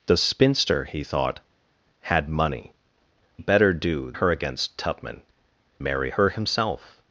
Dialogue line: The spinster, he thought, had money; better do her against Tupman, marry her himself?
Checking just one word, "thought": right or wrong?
right